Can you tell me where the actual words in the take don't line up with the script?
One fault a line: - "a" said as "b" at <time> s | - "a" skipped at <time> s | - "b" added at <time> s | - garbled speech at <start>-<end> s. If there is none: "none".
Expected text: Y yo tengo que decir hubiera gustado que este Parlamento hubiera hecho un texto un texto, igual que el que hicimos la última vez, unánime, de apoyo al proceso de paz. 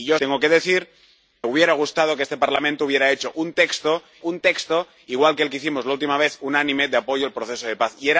none